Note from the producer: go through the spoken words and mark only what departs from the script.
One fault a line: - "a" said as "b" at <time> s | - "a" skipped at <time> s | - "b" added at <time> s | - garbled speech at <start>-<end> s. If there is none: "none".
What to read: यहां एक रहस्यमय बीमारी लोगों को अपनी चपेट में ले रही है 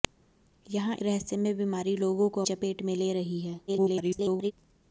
- "एक" skipped at 0.9 s
- "अपनी" skipped at 2.4 s
- garbled speech at 3.7-4.5 s